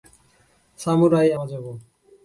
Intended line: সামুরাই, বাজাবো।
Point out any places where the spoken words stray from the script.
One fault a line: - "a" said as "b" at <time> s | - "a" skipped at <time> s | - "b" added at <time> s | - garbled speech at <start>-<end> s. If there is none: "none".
none